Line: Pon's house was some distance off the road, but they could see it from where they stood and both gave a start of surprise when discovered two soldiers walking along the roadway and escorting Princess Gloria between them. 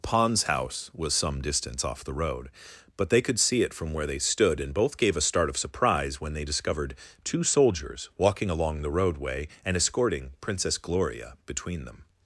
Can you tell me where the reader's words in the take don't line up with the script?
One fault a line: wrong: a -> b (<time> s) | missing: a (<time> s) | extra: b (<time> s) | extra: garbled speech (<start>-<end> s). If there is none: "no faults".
extra: they (6.3 s)